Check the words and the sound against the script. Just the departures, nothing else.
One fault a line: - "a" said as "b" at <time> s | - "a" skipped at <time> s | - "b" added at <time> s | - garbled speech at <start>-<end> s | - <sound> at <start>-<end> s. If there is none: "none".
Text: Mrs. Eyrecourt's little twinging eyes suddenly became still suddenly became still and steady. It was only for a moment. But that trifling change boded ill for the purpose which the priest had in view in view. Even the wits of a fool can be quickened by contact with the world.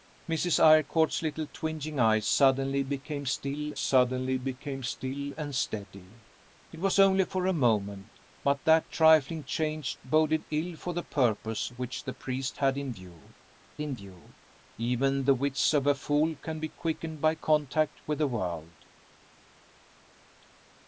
none